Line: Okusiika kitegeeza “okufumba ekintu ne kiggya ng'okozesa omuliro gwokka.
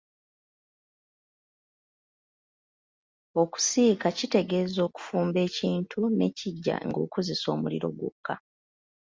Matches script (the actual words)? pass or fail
pass